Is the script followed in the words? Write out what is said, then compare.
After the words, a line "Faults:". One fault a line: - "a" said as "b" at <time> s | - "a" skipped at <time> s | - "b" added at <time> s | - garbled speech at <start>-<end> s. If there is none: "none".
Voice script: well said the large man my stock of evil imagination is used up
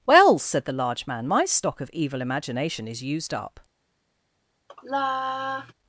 well said the large man my stock of evil imagination is used up
Faults:
none